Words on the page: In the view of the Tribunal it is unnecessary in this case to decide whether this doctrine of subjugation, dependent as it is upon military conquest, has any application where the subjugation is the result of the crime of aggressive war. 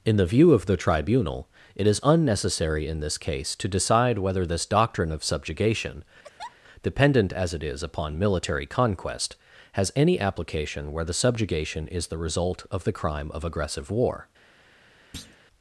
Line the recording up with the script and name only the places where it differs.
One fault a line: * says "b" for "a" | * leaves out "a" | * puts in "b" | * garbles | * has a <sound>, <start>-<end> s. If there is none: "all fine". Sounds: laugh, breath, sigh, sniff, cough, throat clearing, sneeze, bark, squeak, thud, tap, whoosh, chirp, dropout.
* has a laugh, 6.2-6.6 s
* has a thud, 15.1-15.4 s